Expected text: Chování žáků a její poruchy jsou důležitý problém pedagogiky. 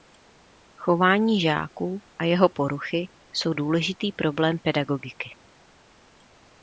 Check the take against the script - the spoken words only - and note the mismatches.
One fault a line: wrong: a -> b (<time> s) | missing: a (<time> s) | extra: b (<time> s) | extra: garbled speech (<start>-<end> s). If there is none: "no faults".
wrong: její -> jeho (2.2 s)